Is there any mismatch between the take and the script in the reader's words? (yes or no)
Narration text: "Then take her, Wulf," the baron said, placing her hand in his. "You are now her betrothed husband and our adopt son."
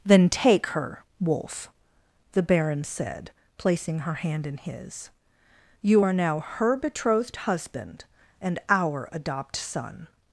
no